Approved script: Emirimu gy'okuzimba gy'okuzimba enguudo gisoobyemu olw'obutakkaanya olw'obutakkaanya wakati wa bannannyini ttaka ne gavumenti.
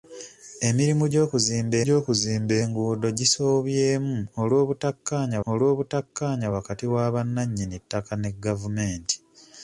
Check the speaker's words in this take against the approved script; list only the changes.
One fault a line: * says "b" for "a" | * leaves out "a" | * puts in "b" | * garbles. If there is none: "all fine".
all fine